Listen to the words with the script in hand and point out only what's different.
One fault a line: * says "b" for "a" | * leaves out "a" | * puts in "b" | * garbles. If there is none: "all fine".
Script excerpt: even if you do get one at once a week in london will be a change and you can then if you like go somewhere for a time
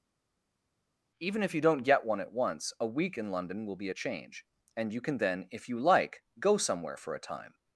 * says "don't" for "do"